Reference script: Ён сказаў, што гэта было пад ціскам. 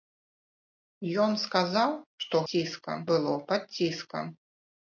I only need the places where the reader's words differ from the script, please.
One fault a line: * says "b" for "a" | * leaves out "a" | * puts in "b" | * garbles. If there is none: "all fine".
* says "ціскам" for "гэта"